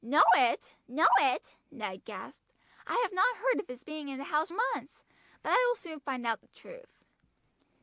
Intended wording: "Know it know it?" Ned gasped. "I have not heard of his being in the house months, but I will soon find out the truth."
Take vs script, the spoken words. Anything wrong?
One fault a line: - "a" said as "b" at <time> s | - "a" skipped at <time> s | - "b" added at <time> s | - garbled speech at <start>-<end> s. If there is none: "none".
none